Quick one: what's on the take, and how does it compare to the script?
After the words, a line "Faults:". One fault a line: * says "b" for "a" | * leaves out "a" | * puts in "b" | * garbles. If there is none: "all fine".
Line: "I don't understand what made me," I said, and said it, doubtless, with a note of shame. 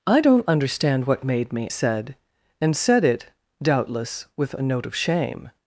"I don't understand what made me," said, and said it, doubtless, with a note of shame.
Faults:
* leaves out "I"